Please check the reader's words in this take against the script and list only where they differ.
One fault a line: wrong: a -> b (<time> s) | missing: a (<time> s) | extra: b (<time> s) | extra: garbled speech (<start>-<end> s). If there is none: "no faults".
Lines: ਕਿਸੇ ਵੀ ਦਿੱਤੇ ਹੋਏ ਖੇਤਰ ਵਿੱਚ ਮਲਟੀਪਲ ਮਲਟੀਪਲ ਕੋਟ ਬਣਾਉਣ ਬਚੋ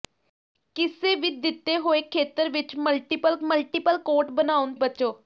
no faults